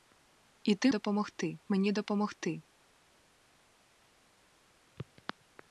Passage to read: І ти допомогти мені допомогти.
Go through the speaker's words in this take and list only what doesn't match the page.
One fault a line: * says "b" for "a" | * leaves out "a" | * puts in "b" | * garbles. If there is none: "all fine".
all fine